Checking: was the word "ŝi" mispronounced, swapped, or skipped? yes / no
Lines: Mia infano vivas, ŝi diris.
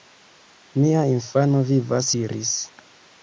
yes